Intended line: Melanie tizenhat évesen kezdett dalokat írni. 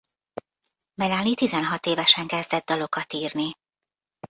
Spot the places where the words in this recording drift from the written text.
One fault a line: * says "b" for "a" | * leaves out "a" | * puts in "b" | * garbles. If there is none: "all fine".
all fine